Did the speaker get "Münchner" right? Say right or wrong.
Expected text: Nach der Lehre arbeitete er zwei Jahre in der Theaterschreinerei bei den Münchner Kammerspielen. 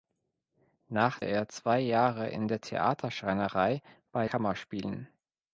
wrong